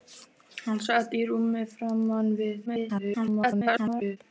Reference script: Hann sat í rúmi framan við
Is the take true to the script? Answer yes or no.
no